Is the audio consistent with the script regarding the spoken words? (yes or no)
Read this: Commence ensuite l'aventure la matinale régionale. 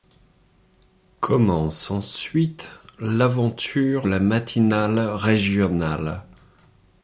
yes